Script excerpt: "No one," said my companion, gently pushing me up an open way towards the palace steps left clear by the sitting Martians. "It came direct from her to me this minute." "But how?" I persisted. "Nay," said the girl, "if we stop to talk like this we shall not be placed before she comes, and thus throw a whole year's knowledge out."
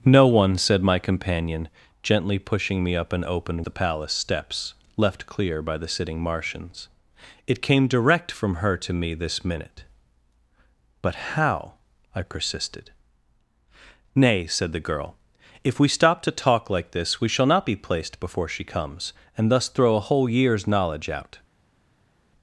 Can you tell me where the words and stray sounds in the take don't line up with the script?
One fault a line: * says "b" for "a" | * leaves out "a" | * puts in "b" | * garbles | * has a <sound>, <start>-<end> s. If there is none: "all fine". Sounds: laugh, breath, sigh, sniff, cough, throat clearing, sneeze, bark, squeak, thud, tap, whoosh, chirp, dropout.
* leaves out "way towards"